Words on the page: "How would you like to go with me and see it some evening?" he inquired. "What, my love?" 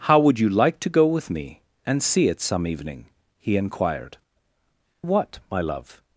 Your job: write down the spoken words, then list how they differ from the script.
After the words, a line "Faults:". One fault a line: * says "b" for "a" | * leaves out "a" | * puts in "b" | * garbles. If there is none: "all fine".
"How would you like to go with me and see it some evening?" he inquired. "What, my love?"
Faults:
all fine